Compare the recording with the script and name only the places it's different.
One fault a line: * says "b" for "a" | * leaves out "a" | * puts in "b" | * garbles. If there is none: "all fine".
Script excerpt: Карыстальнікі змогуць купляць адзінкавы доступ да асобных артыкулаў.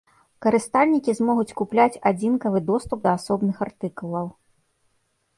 all fine